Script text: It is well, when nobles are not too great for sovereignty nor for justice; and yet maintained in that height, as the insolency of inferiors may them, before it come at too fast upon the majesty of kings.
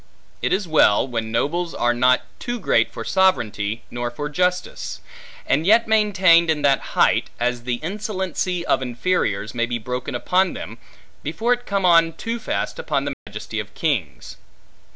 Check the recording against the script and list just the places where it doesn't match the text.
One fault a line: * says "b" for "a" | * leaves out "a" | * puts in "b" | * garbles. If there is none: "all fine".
* puts in "be broken upon"
* says "on" for "at"